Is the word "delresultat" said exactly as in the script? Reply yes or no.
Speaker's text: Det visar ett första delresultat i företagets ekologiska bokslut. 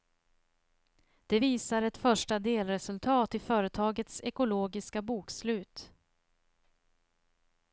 yes